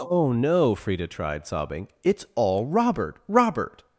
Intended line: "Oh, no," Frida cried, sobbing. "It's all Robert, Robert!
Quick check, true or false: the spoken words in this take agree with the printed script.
false